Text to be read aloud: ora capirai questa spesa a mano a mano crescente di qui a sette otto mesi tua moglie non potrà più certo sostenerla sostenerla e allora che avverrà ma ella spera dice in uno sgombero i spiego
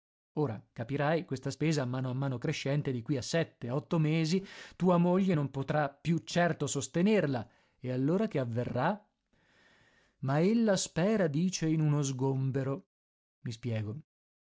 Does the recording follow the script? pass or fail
fail